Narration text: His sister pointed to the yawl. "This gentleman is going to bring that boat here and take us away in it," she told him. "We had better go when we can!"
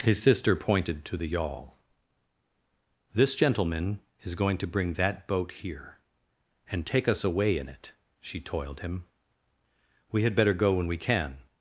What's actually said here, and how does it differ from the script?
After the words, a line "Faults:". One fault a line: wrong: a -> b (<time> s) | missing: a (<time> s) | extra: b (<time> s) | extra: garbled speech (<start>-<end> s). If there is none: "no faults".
His sister pointed to the yawl. "This gentleman is going to bring that boat here and take us away in it," she toiled him. "We had better go when we can!"
Faults:
wrong: told -> toiled (8.4 s)